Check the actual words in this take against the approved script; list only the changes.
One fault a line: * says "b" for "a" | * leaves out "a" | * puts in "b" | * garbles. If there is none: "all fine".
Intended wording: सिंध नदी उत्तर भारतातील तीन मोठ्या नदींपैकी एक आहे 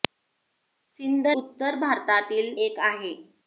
* leaves out "नदी"
* leaves out "तीन मोठ्या नदींपैकी"